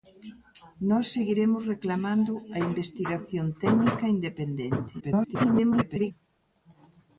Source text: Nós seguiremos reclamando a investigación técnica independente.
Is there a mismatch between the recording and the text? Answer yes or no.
yes